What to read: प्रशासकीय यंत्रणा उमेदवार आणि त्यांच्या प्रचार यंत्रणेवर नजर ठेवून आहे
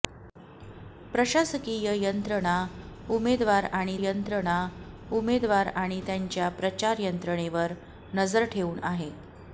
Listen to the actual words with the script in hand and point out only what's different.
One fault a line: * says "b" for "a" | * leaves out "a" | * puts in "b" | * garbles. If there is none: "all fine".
* puts in "यंत्रणा उमेदवार आणि"